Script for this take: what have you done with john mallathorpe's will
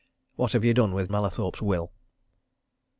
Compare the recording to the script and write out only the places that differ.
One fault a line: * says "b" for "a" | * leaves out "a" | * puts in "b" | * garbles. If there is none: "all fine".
* leaves out "john"